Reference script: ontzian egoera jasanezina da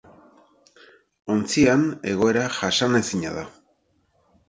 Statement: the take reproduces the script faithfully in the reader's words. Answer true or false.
true